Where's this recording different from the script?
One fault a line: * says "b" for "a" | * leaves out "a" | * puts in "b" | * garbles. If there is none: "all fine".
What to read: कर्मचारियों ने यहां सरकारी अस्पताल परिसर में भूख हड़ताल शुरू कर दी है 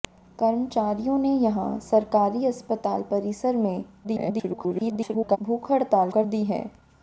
* garbles
* leaves out "शुरू"